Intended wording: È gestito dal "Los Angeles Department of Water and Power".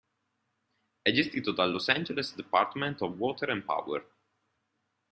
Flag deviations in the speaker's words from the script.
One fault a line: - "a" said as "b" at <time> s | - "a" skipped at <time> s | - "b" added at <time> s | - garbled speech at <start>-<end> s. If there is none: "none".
none